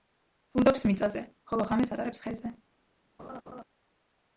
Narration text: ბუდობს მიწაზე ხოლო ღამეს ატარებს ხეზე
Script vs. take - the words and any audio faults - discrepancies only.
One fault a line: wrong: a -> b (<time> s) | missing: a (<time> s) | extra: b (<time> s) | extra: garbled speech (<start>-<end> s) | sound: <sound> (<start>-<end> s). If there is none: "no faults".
sound: laugh (3.2-3.6 s)